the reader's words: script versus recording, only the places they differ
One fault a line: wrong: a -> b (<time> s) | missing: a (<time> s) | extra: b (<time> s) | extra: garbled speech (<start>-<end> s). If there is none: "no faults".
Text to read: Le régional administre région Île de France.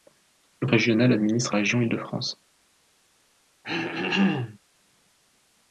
no faults